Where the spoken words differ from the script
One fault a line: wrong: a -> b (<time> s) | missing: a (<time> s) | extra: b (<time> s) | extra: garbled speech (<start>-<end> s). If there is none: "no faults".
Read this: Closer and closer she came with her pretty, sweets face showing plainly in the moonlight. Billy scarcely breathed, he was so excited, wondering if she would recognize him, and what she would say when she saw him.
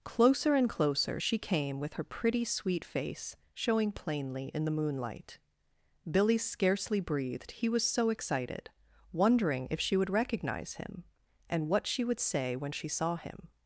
wrong: sweets -> sweet (2.4 s)